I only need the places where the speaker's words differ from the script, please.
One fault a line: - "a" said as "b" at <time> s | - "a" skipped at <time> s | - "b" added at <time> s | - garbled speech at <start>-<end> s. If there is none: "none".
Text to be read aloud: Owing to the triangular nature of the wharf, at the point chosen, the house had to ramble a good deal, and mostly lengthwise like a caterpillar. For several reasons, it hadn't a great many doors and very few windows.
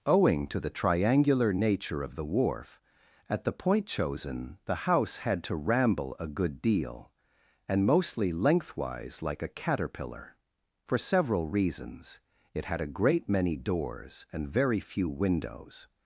- "hadn't" said as "had" at 12.7 s